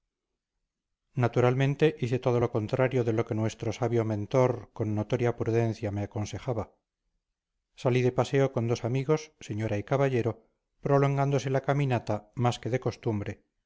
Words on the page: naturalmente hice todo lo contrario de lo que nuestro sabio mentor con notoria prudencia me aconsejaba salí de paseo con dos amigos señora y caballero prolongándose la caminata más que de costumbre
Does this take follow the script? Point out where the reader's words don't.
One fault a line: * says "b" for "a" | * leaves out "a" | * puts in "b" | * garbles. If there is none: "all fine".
all fine